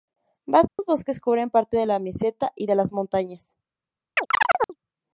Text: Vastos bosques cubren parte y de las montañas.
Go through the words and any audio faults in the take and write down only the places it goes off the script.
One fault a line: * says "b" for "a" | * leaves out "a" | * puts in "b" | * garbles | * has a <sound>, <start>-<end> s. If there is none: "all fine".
* has a dropout, 0.7-0.8 s
* puts in "de la meseta"
* has a chirp, 4.2-4.8 s